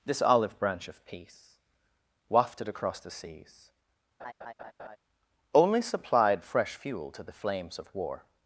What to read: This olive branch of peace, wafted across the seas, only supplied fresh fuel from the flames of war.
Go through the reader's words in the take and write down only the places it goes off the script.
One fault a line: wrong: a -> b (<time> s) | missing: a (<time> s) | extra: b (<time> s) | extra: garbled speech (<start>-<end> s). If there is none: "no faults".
wrong: from -> to (7.1 s)